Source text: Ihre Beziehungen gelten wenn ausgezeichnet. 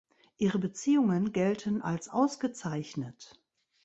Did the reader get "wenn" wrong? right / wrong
wrong